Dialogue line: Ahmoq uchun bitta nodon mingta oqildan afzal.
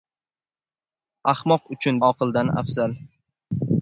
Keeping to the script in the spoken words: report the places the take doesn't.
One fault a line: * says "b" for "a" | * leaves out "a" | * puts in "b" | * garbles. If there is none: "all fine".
* leaves out "bitta nodon mingta"